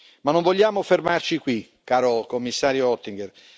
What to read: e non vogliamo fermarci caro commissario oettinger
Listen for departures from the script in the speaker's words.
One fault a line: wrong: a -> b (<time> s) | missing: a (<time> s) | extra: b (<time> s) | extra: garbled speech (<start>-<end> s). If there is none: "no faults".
wrong: e -> ma (0.2 s)
extra: qui (1.4 s)